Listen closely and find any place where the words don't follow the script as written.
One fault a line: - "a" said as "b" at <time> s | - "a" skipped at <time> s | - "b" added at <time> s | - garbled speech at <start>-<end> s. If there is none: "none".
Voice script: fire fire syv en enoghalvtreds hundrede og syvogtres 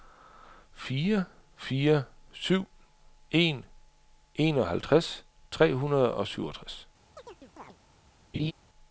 - "tre" added at 5.5 s